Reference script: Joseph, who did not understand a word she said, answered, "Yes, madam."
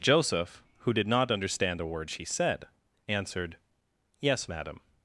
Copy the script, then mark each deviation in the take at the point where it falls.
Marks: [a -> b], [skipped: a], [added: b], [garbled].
Joseph, who did not understand a word she said, answered, "Yes, madam."